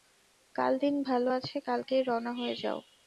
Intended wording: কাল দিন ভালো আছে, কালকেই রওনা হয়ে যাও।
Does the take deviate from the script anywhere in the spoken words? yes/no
no